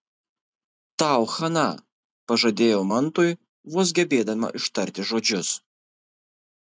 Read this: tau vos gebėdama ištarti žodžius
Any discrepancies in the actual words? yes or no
yes